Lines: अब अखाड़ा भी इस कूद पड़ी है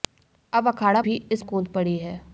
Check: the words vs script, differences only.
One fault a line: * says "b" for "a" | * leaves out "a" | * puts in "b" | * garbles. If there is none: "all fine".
all fine